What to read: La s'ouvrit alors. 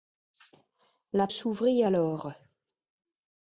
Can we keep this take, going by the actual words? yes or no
yes